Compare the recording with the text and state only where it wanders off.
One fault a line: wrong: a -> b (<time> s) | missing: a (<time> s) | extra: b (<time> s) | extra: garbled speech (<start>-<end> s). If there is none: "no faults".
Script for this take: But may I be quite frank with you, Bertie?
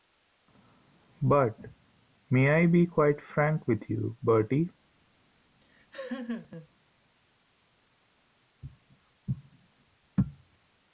no faults